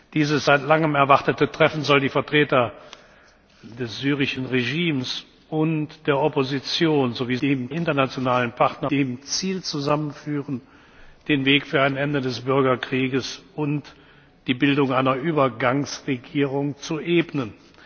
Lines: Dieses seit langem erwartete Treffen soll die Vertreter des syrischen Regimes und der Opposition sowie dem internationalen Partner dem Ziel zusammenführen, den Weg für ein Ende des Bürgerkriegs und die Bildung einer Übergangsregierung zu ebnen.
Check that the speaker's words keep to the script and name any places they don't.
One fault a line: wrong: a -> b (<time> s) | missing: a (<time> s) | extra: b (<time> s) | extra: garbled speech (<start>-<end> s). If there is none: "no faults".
no faults